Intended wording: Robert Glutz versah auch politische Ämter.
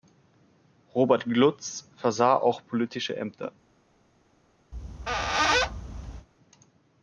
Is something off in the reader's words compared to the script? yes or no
no